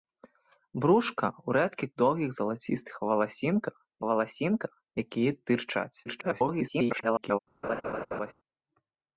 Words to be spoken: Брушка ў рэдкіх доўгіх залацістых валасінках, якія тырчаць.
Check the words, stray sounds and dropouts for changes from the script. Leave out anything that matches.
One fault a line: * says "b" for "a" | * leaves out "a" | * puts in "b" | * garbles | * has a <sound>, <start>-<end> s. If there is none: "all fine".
* puts in "валасінках"
* garbles
* has a laugh, 7.6-8.3 s